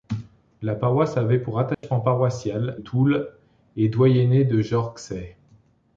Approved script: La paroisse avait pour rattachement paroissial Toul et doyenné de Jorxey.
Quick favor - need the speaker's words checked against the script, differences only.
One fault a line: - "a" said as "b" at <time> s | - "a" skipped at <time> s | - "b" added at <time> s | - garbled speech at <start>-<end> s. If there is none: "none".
none